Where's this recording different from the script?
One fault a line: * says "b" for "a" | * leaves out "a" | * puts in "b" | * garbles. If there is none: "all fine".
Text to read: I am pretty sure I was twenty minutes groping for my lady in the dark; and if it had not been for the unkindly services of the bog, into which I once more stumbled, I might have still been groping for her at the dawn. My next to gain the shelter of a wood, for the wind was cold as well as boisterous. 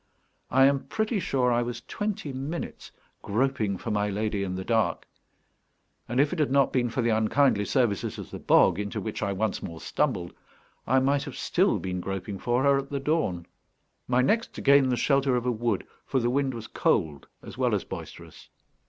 all fine